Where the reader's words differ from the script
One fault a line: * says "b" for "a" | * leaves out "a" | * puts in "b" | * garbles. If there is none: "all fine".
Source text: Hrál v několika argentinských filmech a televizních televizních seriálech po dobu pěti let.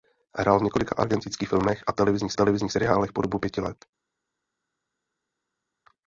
all fine